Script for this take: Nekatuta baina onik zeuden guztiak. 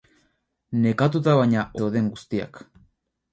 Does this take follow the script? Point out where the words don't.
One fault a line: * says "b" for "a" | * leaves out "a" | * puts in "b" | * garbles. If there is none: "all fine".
* leaves out "onik"